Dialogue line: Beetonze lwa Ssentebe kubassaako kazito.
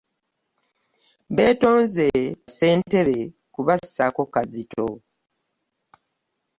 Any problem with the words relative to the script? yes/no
yes